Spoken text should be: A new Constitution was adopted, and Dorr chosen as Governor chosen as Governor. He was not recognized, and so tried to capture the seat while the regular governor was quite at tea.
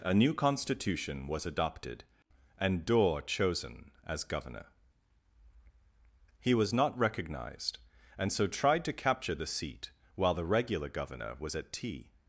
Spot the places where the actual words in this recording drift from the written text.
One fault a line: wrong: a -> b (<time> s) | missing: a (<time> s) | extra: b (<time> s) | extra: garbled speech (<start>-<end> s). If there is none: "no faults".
missing: chosen as Governor (4.7 s)
missing: quite (11.5 s)